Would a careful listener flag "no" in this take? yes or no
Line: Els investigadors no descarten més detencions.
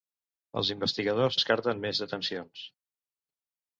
yes